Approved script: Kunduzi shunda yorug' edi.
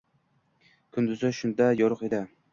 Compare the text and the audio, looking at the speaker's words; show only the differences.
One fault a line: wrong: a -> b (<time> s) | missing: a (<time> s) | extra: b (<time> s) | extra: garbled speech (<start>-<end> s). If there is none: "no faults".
no faults